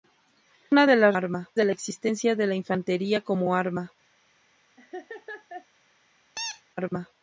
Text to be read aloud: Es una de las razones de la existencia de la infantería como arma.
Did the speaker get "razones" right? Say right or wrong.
wrong